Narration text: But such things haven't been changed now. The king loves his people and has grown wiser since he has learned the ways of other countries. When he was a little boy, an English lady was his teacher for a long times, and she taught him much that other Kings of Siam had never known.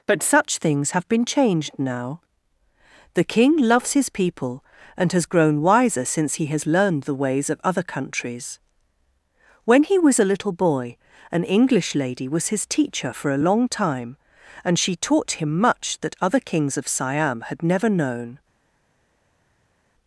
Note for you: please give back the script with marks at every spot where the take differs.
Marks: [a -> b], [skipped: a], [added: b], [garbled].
But such things [haven't -> have] been changed now. The king loves his people and has grown wiser since he has learned the ways of other countries. When he was a little boy, an English lady was his teacher for a long [times, -> time] and she taught him much that other Kings of Siam had never known.